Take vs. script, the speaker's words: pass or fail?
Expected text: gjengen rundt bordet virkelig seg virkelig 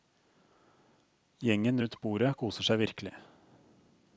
fail